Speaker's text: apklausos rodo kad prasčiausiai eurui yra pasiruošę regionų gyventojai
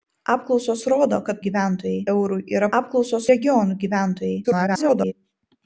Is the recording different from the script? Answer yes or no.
yes